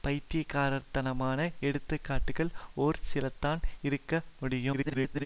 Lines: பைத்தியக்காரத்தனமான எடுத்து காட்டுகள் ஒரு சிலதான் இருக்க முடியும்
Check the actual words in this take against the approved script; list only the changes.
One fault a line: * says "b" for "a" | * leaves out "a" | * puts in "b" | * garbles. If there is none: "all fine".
* garbles